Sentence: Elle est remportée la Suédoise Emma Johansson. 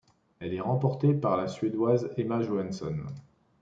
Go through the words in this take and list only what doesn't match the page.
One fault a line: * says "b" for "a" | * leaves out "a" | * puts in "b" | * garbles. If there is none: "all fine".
* puts in "par"